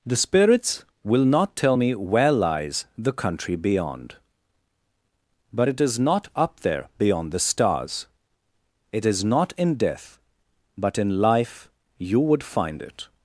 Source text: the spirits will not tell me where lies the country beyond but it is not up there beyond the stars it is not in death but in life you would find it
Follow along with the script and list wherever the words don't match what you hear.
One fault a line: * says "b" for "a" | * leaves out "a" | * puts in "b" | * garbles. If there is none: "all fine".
all fine